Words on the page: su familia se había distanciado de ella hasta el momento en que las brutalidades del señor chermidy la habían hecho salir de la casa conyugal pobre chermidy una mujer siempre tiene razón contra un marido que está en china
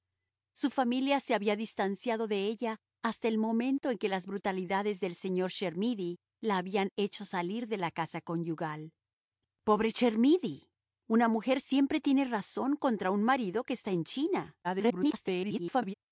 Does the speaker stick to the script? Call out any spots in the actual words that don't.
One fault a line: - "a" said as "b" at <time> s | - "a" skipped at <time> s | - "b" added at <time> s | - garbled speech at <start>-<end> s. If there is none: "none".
- garbled speech at 14.6-15.9 s